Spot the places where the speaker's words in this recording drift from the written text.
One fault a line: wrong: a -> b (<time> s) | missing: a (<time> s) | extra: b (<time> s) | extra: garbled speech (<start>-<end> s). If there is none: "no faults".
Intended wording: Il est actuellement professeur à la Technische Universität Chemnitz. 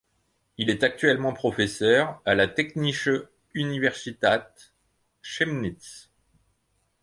no faults